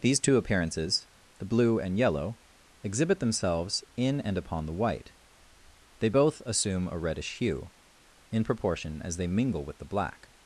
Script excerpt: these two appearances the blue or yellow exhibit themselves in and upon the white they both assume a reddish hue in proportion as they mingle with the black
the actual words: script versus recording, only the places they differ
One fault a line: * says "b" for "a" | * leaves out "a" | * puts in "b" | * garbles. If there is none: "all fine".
* says "and" for "or"